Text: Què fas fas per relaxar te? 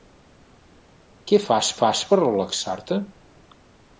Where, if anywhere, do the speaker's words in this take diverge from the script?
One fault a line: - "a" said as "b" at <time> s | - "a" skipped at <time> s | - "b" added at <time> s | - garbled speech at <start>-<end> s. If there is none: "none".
none